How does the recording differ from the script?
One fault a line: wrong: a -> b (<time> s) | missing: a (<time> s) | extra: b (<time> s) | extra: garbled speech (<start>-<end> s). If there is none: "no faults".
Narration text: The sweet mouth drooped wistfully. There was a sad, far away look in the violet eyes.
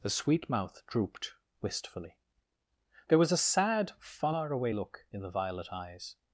no faults